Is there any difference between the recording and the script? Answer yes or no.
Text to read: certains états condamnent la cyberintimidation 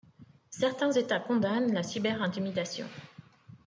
no